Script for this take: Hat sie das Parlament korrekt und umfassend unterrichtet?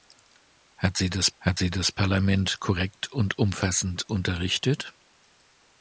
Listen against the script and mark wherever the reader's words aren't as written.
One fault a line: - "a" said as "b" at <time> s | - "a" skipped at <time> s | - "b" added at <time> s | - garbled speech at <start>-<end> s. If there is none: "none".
- "hat sie das" added at 1.4 s